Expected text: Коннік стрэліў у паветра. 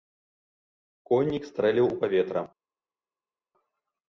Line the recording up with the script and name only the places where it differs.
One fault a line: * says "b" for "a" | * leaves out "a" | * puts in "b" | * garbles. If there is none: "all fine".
all fine